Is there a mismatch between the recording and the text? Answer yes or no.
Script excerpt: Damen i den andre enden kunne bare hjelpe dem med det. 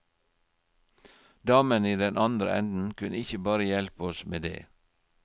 yes